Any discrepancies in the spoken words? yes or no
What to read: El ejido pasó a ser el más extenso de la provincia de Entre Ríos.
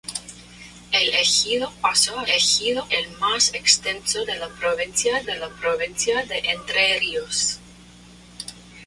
yes